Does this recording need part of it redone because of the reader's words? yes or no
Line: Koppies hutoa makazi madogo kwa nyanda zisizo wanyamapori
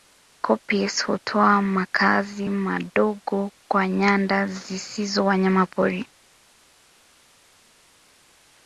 no